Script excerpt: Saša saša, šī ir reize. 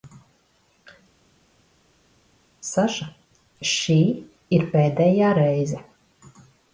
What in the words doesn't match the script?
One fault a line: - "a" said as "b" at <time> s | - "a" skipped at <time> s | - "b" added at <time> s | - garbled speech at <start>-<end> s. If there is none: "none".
- "saša" skipped at 3.1 s
- "pēdējā" added at 4.8 s